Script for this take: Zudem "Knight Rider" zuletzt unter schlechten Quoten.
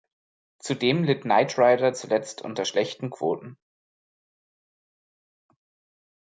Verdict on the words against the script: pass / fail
fail